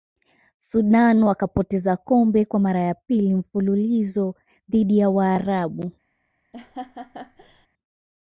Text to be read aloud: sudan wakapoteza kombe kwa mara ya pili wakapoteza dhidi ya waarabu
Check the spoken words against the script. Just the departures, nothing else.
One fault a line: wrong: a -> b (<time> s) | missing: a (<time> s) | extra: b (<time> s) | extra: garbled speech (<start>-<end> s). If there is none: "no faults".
wrong: wakapoteza -> mfululizo (3.4 s)